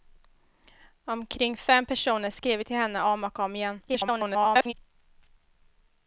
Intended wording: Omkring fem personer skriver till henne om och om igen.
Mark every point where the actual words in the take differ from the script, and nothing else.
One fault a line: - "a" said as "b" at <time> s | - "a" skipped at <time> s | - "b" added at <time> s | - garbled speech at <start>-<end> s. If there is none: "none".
- garbled speech at 3.9-4.7 s